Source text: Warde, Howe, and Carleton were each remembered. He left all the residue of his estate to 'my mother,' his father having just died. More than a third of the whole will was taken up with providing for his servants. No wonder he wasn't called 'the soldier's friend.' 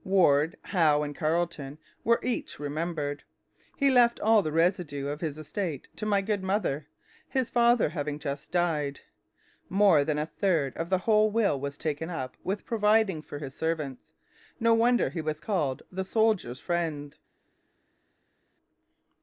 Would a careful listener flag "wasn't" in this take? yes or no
yes